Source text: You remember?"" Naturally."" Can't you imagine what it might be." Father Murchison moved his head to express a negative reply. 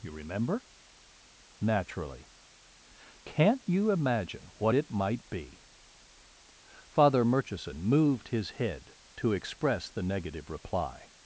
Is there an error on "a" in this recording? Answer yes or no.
yes